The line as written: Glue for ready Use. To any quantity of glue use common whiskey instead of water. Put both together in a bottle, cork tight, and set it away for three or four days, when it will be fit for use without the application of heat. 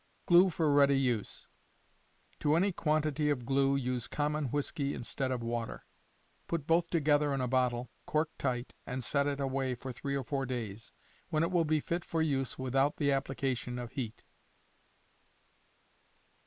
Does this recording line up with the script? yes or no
yes